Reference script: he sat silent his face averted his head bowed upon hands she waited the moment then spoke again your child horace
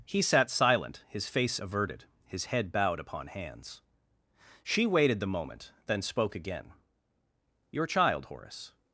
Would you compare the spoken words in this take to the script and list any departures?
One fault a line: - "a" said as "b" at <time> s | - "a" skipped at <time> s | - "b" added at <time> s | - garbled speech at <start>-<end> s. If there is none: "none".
none